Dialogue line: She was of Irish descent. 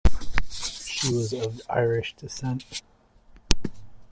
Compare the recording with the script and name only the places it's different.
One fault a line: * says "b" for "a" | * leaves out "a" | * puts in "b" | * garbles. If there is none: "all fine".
all fine